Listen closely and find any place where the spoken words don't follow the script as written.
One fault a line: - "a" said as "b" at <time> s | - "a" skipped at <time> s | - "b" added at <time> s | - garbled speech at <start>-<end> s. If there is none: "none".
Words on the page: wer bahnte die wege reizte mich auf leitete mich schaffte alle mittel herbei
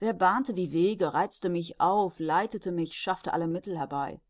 none